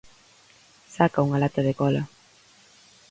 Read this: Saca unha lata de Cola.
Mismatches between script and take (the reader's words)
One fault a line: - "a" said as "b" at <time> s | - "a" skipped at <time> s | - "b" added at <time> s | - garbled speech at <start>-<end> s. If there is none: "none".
none